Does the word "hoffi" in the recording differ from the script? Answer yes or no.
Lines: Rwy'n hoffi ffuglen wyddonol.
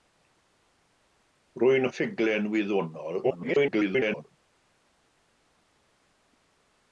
yes